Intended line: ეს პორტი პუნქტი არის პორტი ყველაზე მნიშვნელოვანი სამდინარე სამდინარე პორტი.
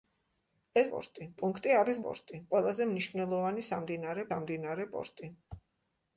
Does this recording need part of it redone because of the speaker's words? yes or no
no